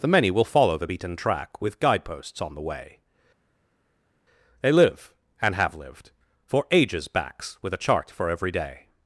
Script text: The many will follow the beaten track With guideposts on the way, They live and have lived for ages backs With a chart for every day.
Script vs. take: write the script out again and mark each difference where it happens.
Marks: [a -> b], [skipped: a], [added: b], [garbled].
The many will follow the beaten track With guideposts on the way, They live and have lived for ages backs With a chart for every day.